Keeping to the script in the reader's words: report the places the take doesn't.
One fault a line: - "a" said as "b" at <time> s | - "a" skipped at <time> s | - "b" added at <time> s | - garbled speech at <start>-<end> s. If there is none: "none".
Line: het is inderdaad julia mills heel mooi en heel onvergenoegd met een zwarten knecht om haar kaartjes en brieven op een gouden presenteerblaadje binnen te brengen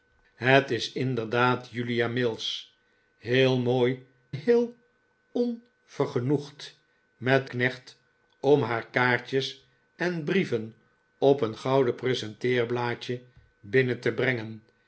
- "en" skipped at 4.0 s
- "een zwarten" skipped at 7.5 s